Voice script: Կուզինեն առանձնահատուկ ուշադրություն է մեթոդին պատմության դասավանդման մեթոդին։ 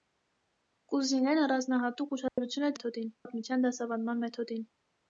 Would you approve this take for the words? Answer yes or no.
yes